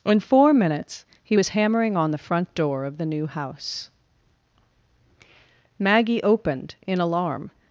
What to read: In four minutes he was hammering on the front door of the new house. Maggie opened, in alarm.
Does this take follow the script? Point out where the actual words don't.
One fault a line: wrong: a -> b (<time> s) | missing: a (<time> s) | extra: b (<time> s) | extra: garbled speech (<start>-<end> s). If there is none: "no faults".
no faults